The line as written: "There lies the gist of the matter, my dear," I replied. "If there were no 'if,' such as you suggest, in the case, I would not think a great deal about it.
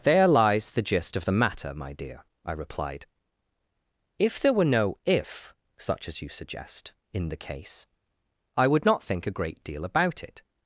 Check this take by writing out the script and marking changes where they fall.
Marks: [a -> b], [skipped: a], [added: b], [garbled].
"There lies the gist of the matter, my dear," I replied. "If there were no 'if,' such as you suggest, in the case, I would not think a great deal about it.